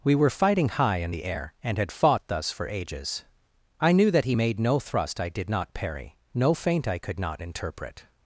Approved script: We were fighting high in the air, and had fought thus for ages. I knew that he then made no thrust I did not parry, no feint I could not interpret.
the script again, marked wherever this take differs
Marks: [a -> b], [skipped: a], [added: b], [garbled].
We were fighting high in the air, and had fought thus for ages. I knew that he [skipped: then] made no thrust I did not parry, no feint I could not interpret.